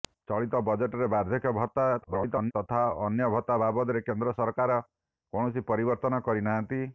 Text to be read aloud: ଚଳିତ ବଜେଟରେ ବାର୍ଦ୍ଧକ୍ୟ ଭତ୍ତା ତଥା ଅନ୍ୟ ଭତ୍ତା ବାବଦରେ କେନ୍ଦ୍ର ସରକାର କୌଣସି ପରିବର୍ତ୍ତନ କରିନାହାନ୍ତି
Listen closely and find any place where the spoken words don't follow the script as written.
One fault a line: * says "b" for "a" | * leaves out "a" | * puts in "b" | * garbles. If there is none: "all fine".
* garbles